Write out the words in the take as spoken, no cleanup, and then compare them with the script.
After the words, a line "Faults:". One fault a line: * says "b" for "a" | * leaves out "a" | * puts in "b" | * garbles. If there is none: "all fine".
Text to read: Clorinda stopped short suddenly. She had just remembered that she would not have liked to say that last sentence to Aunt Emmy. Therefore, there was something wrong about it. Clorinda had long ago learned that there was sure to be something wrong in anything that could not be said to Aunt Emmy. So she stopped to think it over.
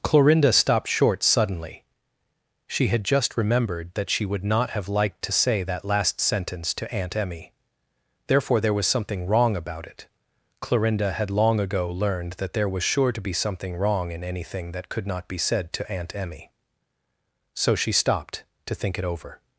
Clorinda stopped short suddenly. She had just remembered that she would not have liked to say that last sentence to Aunt Emmy. Therefore, there was something wrong about it. Clorinda had long ago learned that there was sure to be something wrong in anything that could not be said to Aunt Emmy. So she stopped to think it over.
Faults:
all fine